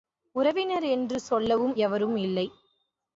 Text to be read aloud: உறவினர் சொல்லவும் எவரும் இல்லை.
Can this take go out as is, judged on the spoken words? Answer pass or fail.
fail